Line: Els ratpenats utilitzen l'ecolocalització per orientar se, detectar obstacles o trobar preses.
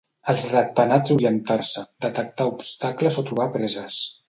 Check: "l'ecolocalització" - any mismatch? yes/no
yes